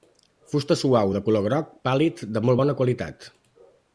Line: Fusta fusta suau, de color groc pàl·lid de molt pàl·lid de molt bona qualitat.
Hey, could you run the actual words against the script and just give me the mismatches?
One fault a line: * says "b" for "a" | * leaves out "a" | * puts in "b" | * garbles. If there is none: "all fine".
* leaves out "fusta"
* leaves out "pàl·lid de molt"